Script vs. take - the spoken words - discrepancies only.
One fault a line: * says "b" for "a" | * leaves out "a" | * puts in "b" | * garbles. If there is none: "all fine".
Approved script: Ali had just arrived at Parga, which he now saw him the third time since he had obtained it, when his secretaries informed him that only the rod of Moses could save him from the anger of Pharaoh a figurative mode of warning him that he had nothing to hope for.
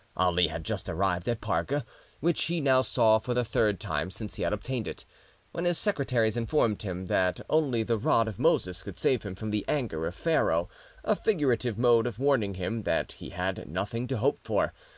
* says "for" for "him"